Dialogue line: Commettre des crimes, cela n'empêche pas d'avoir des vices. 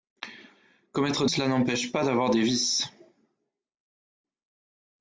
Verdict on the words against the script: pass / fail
fail